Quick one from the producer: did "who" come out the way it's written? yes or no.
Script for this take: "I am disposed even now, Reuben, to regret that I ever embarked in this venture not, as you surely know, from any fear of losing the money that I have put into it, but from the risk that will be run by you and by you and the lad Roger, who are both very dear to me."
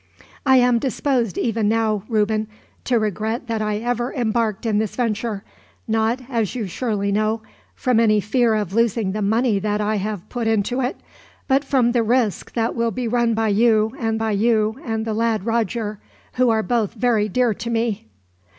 yes